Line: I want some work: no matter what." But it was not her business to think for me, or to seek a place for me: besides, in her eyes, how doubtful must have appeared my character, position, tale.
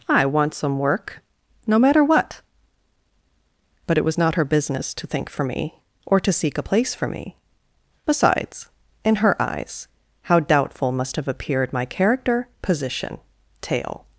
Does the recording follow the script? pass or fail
pass